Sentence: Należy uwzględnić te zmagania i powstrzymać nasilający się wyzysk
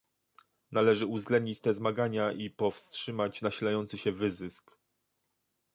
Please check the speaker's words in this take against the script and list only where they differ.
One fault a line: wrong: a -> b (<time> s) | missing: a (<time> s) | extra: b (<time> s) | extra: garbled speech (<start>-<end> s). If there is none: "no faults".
no faults